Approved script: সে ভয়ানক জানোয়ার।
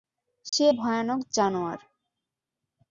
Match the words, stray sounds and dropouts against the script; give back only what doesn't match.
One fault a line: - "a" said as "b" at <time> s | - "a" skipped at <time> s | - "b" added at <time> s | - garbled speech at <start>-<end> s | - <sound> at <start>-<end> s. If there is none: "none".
- dropout at 0.5-0.5 s